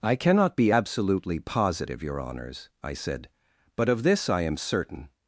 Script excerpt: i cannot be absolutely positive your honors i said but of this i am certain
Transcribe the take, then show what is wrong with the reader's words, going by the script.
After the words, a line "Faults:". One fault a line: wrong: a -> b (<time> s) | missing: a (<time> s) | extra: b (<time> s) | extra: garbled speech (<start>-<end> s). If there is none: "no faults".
i cannot be absolutely positive your honors i said but of this i am certain
Faults:
no faults